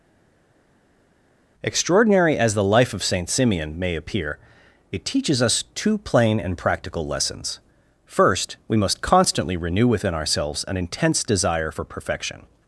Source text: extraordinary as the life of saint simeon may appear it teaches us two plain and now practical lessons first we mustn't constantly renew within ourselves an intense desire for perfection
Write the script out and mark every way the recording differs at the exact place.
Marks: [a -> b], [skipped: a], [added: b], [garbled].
extraordinary as the life of saint simeon may appear it teaches us two plain and [skipped: now] practical lessons first we [mustn't -> must] constantly renew within ourselves an intense desire for perfection